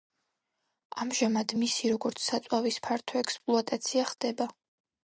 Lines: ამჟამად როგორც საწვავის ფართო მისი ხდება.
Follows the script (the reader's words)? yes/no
no